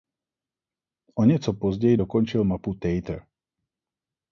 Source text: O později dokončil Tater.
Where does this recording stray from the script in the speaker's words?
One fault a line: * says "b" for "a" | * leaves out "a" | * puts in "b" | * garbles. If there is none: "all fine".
* puts in "něco"
* puts in "mapu"